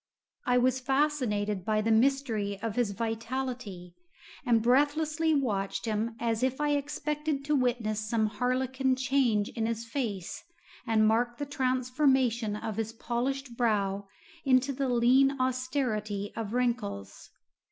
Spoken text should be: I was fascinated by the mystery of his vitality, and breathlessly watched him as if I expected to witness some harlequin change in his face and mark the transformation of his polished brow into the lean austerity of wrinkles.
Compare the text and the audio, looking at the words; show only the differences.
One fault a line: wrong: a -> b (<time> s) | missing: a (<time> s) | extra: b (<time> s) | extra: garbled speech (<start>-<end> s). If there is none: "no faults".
no faults